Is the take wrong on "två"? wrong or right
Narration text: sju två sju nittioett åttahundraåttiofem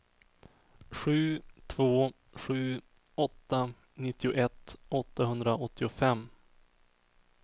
right